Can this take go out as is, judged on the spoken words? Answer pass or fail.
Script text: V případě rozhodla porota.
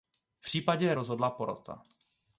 pass